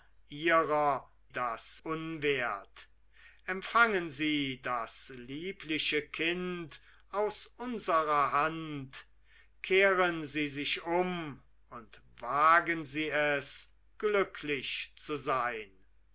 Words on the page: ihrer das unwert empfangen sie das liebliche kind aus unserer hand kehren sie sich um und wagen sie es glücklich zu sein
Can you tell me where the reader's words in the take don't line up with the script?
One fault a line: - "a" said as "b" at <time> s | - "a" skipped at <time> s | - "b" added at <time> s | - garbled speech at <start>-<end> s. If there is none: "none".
none